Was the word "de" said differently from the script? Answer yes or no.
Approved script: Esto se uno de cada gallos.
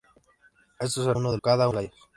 no